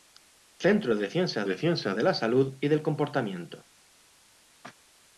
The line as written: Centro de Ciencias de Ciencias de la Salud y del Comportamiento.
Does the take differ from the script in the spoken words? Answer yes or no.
no